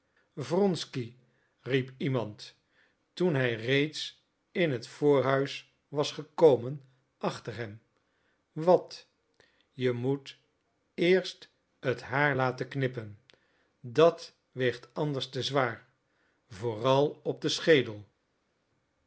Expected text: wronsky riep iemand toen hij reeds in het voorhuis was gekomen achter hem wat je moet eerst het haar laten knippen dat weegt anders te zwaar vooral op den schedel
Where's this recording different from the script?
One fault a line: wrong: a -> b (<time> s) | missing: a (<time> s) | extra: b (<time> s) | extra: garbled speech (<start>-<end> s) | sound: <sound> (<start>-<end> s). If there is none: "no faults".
no faults